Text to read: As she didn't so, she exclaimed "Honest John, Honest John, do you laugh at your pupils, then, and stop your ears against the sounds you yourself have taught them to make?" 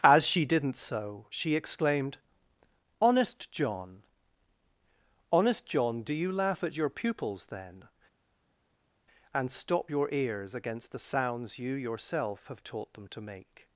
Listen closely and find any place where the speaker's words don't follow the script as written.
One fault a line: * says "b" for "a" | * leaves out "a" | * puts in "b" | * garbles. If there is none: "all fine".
all fine